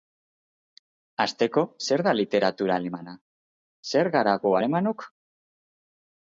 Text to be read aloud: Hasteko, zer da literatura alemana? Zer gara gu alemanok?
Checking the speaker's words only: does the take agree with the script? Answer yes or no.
yes